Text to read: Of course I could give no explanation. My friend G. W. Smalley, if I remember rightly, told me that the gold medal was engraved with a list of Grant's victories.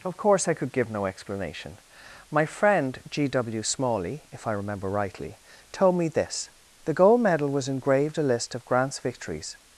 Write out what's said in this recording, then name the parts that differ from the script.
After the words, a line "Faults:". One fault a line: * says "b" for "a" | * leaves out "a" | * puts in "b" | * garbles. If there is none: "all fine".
Of course I could give no explanation. My friend G. W. Smalley, if I remember rightly, told me this the gold medal was engraved a list of Grant's victories.
Faults:
* says "this" for "that"
* leaves out "with"